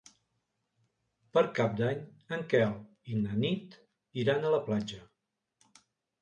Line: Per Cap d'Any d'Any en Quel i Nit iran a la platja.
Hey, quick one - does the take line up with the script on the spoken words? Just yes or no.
no